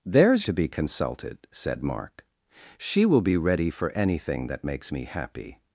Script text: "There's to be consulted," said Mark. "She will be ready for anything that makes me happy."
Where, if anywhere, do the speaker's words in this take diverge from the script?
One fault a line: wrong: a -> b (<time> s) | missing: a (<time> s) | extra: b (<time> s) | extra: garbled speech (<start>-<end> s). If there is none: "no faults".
no faults